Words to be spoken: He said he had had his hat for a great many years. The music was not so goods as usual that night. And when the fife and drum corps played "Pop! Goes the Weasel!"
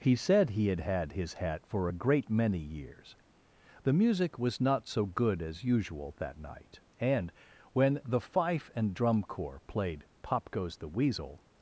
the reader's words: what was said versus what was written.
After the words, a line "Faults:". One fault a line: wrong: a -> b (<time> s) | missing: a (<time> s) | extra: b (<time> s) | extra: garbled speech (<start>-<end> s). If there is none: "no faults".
He said he had had his hat for a great many years. The music was not so good as usual that night. And when the fife and drum corps played "Pop! Goes the Weasel!"
Faults:
wrong: goods -> good (5.0 s)